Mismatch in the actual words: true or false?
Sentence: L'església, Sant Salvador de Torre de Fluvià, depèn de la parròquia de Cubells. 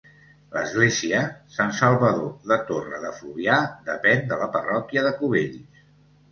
false